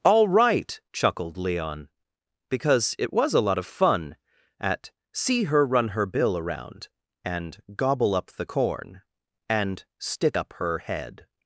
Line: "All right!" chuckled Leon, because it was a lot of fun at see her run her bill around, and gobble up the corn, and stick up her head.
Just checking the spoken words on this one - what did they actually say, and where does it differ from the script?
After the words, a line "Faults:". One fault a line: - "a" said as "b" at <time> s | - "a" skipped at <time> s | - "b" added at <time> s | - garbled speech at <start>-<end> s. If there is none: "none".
"All right!" chuckled Leon, because it was a lot of fun at see her run her bill around, and gobble up the corn, and stick up her head.
Faults:
none